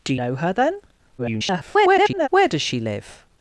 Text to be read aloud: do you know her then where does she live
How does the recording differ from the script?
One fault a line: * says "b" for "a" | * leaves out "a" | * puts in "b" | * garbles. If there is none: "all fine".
* leaves out "you"
* garbles